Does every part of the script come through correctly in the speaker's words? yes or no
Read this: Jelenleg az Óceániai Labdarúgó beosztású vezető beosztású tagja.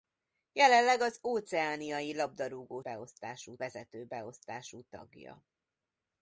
yes